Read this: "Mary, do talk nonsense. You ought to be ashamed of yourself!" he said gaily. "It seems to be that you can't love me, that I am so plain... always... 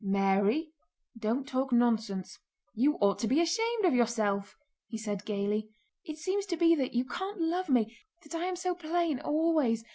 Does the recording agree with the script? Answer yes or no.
no